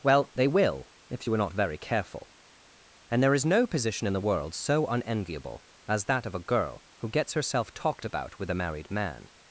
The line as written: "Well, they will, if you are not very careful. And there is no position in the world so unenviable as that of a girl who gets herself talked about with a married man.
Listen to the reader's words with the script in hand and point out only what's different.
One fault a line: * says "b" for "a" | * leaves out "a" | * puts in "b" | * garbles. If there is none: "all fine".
all fine